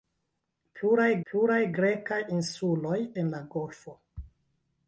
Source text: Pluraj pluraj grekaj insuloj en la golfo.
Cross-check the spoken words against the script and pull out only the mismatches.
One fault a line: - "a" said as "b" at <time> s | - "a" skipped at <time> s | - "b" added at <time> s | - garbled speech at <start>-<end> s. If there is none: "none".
none